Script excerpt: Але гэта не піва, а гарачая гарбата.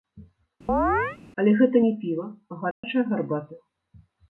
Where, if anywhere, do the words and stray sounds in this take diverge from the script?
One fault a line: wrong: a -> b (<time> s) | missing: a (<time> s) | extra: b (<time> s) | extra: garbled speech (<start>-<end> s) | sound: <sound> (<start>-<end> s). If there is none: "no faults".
sound: chirp (0.7-1.2 s)
sound: dropout (2.7-2.8 s)